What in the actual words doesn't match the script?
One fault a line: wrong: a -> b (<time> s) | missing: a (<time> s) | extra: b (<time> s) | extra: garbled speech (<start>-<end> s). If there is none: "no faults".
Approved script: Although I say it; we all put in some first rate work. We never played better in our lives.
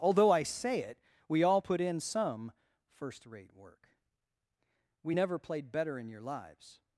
wrong: our -> your (6.1 s)